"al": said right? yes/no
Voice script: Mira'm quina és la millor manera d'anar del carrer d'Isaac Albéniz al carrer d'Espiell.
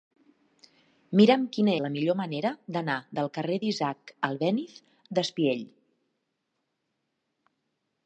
no